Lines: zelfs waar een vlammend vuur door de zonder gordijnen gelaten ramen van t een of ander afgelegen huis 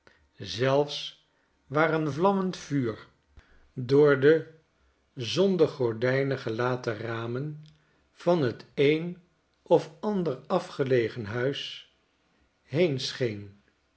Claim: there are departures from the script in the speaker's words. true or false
false